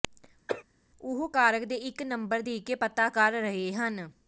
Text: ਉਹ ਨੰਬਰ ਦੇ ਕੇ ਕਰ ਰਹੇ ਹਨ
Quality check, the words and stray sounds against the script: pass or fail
fail